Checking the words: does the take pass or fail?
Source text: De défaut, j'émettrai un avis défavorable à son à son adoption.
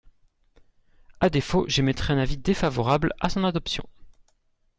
fail